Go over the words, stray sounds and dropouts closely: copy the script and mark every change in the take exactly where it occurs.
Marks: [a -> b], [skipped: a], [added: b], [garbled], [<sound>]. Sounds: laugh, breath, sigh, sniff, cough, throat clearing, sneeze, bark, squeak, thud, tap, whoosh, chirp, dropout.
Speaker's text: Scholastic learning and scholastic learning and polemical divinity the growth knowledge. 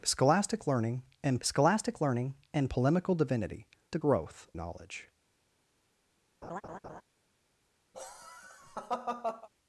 Scholastic learning and scholastic learning and polemical divinity the growth knowledge. [laugh] [laugh]